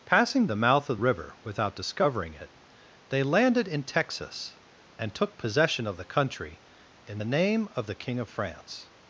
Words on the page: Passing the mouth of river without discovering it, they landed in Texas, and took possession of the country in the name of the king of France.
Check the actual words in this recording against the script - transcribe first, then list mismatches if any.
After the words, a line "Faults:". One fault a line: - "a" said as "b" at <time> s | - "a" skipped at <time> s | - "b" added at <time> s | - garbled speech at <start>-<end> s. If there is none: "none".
Passing the mouth of river without discovering it, they landed in Texas, and took possession of the country in the name of the king of France.
Faults:
none